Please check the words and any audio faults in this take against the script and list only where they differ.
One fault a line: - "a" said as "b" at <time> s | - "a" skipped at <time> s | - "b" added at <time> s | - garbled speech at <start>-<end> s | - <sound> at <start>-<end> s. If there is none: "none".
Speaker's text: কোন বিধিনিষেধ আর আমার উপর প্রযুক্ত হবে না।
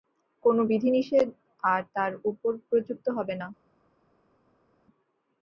- "আমার" said as "তার" at 2.0 s